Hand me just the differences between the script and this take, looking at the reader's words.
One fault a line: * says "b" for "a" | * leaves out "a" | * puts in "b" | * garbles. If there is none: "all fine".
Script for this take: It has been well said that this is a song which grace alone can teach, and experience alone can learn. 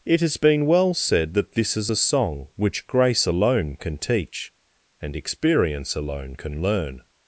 all fine